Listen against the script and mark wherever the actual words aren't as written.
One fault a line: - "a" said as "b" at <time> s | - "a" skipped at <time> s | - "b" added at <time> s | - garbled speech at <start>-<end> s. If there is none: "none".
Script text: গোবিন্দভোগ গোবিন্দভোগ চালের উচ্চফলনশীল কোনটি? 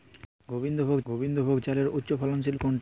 none